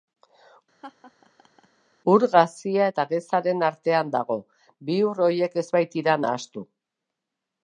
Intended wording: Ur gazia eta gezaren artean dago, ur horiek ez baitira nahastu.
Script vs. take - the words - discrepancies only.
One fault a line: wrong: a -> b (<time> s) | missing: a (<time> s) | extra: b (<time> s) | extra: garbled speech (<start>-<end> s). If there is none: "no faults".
extra: bi (4.9 s)